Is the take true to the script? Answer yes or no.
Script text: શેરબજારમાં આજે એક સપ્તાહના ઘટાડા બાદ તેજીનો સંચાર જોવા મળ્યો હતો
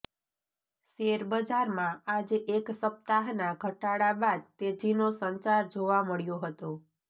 yes